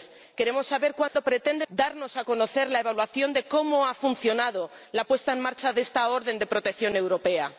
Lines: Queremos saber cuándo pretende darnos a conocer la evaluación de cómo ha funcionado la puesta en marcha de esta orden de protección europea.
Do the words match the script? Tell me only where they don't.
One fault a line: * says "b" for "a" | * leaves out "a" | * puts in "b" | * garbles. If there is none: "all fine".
all fine